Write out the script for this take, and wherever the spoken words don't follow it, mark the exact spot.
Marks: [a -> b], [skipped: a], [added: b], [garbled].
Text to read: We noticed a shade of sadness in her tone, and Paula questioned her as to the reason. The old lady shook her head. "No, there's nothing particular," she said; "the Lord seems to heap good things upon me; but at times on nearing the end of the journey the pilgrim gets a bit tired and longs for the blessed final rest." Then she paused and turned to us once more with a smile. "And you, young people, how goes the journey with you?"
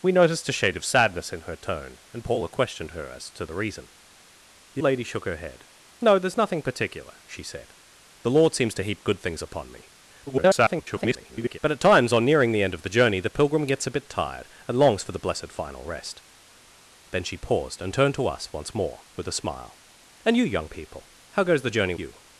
We noticed a shade of sadness in her tone, and Paula questioned her as to the reason. The [skipped: old] lady shook her head. "No, there's nothing particular," she said; "the Lord seems to heap good things upon me; [garbled] but at times on nearing the end of the journey the pilgrim gets a bit tired and longs for the blessed final rest." Then she paused and turned to us once more with a smile. "And you, young people, how goes the journey [skipped: with] you?"